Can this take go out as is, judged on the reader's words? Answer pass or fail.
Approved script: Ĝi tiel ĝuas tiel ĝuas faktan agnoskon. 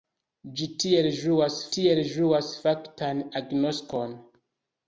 pass